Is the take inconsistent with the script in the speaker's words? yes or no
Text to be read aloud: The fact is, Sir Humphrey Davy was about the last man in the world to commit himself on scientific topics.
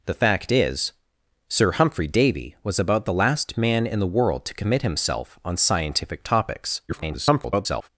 yes